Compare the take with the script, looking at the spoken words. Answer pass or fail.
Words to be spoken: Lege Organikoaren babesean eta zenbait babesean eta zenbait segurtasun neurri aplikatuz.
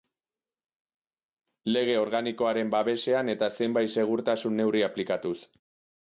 fail